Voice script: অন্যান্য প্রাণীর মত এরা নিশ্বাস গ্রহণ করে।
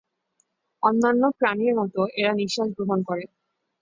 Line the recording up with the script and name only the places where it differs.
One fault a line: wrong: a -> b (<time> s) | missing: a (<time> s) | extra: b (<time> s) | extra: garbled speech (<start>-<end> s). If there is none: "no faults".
no faults